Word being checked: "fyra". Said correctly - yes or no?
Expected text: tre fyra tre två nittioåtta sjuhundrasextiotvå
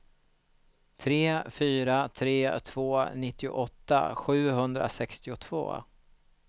yes